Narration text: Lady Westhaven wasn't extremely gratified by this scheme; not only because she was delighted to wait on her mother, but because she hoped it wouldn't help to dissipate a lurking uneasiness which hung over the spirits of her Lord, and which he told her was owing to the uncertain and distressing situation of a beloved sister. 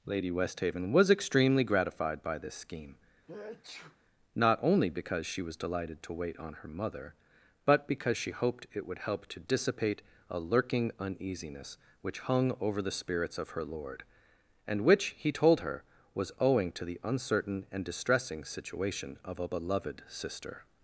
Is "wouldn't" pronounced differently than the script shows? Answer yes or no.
yes